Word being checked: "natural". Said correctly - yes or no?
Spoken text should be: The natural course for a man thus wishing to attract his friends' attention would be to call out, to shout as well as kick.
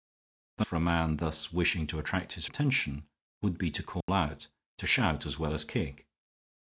no